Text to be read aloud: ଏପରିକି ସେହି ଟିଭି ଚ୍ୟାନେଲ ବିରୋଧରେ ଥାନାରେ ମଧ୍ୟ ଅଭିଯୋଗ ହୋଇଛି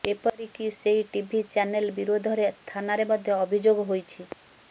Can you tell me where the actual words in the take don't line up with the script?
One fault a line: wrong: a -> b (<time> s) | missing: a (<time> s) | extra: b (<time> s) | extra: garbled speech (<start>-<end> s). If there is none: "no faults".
no faults